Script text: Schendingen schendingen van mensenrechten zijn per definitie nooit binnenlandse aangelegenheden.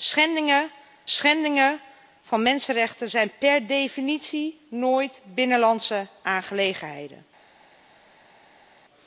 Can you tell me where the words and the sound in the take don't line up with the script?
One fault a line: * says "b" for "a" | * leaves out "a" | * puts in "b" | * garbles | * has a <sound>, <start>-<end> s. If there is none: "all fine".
all fine